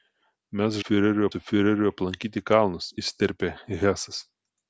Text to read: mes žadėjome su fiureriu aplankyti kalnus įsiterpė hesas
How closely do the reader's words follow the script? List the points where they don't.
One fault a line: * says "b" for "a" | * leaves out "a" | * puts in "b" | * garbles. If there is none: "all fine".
* says "fiureriu" for "žadėjome"